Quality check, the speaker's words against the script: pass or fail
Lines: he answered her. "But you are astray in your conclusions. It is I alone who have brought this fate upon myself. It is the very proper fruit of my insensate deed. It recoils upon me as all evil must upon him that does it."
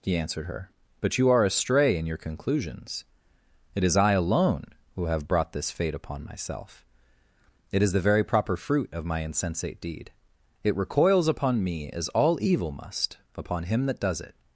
pass